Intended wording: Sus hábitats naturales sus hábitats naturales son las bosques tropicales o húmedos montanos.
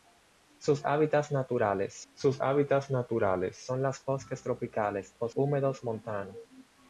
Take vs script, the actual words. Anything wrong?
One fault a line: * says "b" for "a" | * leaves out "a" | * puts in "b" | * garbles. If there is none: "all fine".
all fine